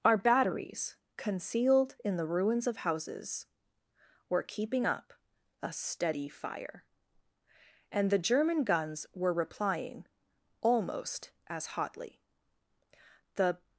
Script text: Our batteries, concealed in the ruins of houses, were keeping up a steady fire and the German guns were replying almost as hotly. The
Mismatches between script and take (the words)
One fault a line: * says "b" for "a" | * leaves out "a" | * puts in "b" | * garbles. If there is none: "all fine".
all fine